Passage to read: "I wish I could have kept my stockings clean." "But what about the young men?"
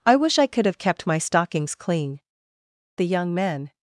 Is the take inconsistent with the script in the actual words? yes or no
yes